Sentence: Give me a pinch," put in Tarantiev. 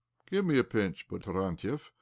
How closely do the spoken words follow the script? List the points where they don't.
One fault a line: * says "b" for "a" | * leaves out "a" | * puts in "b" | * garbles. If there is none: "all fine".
* leaves out "in"